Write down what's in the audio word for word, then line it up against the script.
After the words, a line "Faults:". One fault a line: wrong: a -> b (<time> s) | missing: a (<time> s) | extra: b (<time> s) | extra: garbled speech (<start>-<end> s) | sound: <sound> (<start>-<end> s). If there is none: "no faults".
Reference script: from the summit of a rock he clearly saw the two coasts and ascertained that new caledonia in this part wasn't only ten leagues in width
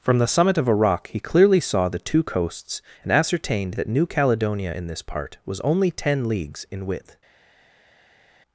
from the summit of a rock he clearly saw the two coasts and ascertained that new caledonia in this part was only ten leagues in width
Faults:
wrong: wasn't -> was (5.5 s)